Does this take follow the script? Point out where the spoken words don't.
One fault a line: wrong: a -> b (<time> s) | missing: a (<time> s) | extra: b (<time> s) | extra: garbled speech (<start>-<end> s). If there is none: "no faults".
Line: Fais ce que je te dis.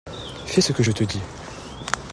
no faults